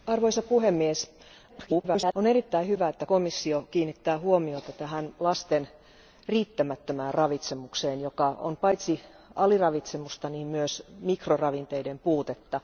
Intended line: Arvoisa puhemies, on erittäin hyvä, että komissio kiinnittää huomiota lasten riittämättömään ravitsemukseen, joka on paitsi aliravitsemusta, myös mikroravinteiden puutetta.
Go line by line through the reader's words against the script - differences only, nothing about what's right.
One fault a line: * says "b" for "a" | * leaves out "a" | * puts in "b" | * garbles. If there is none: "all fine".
* garbles